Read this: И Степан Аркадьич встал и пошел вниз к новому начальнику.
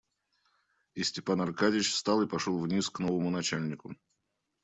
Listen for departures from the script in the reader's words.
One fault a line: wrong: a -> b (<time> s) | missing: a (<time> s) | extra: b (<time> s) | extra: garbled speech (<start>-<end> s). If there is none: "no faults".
no faults